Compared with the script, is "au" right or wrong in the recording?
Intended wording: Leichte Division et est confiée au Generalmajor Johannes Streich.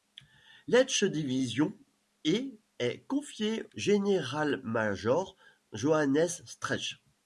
wrong